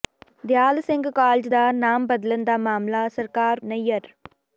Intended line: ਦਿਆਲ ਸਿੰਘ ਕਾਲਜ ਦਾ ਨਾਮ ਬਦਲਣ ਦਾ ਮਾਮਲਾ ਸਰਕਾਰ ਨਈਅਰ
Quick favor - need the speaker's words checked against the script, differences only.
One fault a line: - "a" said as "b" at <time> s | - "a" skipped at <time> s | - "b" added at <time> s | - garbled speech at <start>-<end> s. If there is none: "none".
none